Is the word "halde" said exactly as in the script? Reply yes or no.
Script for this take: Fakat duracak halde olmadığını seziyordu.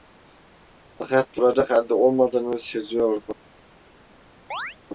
yes